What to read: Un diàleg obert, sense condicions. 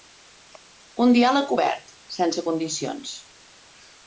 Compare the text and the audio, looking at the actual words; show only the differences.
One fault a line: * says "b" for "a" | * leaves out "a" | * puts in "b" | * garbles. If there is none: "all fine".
all fine